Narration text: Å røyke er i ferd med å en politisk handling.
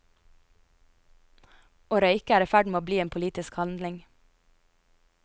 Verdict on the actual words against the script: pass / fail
fail